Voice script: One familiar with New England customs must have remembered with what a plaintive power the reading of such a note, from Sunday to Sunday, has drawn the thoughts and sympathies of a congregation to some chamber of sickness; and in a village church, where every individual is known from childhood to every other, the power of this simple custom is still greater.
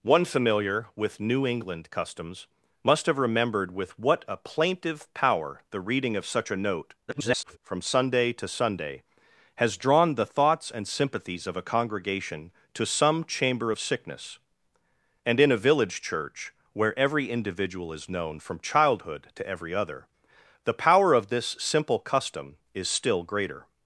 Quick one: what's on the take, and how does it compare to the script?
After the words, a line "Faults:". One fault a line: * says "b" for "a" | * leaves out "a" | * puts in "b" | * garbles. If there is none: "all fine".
One familiar with New England customs must have remembered with what a plaintive power the reading of such a note, [garbled] from Sunday to Sunday, has drawn the thoughts and sympathies of a congregation to some chamber of sickness; and in a village church, where every individual is known from childhood to every other, the power of this simple custom is still greater.
Faults:
* garbles